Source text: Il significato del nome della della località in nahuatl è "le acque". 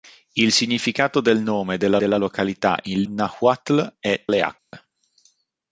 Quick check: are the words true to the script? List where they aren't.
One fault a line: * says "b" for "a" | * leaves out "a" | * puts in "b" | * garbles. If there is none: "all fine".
all fine